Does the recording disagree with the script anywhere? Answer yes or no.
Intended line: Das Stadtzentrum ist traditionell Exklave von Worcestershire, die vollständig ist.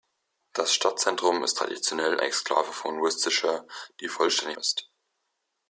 no